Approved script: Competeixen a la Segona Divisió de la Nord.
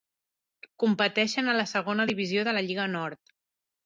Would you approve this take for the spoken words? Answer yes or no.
no